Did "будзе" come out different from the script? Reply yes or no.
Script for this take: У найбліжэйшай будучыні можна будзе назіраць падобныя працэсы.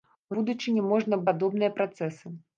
yes